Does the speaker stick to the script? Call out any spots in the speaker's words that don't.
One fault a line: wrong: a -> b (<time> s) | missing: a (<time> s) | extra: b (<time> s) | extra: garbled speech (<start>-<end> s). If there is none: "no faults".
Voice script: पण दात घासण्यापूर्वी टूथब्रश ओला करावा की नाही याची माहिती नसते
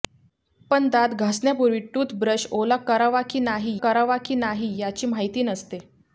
extra: करावा की नाही (3.8 s)